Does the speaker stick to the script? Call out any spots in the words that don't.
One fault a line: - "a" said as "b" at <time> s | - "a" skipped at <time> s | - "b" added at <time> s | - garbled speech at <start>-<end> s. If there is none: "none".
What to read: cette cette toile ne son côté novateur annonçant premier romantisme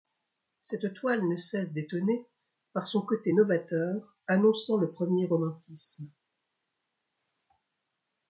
- "cette" skipped at 0.9 s
- "cesse d'étonner par" added at 1.4 s
- "le" added at 4.8 s